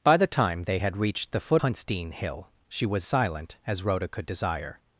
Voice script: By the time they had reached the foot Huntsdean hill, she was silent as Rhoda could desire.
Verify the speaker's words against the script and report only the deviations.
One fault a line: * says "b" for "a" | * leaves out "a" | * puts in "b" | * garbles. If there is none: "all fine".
all fine